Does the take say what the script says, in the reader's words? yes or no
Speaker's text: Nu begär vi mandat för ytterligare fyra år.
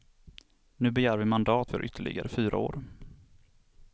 yes